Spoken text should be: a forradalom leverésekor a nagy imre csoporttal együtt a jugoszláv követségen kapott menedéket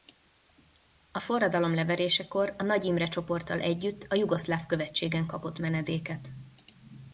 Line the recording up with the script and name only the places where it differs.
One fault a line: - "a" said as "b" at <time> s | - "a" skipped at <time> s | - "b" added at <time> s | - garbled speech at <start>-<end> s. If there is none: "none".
none